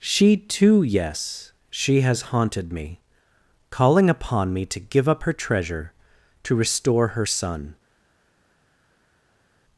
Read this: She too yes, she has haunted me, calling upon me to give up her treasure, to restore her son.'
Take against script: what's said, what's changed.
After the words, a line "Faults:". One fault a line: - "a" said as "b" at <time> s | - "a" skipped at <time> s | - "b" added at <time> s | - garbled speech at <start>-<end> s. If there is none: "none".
She too yes, she has haunted me, calling upon me to give up her treasure, to restore her son.'
Faults:
none